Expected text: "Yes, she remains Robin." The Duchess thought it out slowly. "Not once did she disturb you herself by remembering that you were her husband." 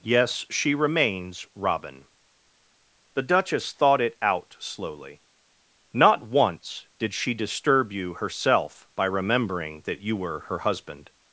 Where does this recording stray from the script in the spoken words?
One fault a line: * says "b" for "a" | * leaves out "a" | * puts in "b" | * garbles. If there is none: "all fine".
all fine